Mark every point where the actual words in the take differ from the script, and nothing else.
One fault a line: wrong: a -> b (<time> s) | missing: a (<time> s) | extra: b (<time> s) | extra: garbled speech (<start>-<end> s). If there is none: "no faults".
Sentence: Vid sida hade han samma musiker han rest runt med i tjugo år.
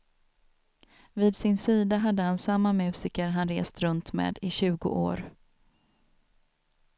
extra: sin (1.4 s)